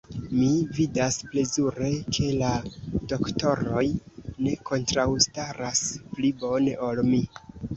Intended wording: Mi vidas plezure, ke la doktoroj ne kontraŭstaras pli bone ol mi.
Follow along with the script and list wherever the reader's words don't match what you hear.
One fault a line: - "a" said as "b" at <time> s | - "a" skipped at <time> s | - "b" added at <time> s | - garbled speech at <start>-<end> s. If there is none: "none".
none